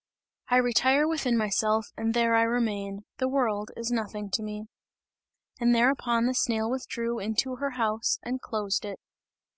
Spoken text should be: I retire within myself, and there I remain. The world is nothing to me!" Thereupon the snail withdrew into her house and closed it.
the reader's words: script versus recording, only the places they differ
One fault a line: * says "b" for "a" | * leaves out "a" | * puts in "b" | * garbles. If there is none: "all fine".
* puts in "And"